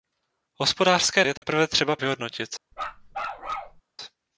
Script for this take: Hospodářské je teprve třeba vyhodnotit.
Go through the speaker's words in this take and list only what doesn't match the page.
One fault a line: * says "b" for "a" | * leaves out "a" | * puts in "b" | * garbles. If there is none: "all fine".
all fine